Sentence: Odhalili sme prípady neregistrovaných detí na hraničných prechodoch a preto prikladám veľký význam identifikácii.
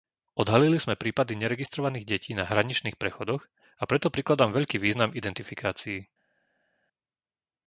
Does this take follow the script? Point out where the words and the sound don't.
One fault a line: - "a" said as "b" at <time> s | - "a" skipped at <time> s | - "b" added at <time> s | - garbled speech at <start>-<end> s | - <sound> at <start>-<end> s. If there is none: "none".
none